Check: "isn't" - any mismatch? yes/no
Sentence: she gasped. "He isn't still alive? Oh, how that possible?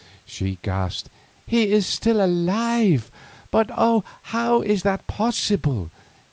yes